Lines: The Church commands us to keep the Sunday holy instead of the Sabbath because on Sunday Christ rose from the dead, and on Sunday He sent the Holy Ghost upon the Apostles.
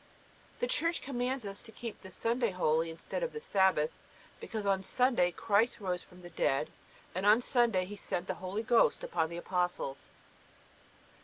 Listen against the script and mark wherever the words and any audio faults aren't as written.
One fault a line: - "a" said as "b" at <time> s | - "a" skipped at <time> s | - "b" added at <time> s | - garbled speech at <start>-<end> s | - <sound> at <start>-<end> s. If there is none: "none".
none